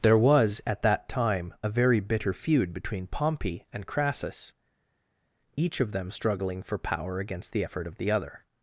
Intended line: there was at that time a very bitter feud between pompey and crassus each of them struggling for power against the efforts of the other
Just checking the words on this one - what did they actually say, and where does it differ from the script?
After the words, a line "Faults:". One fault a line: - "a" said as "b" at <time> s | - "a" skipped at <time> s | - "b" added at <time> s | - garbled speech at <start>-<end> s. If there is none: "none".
there was at that time a very bitter feud between pompey and crassus each of them struggling for power against the effort of the other
Faults:
- "efforts" said as "effort" at 7.6 s